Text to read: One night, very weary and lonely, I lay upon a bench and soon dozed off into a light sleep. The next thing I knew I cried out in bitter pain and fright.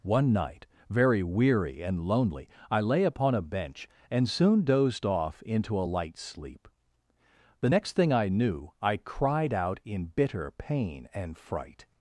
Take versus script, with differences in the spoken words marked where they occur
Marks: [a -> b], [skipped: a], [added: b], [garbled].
One night, very weary and lonely, I lay upon a bench and soon dozed off into a light sleep. The next thing I knew I cried out in bitter pain and fright.